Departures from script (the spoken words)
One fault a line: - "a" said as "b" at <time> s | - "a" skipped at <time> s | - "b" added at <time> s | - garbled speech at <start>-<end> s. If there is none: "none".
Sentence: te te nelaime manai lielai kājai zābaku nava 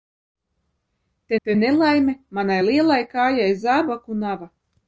none